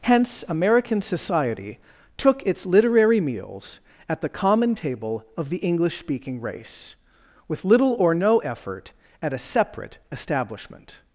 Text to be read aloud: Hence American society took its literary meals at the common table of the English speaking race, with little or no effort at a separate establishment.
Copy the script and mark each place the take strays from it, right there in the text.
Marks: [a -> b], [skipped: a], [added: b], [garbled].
Hence American society took its literary meals at the common table of the English speaking race, with little or no effort at a separate establishment.